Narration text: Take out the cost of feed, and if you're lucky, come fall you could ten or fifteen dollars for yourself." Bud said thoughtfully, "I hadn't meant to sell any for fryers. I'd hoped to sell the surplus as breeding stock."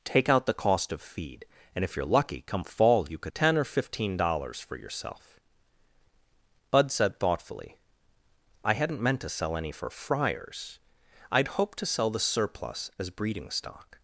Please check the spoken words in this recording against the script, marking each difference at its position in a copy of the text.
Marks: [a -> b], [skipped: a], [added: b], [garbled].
Take out the cost of feed, and if you're lucky, come fall you could ten or fifteen dollars for yourself." Bud said thoughtfully, "I hadn't meant to sell any for fryers. I'd hoped to sell the surplus as breeding stock."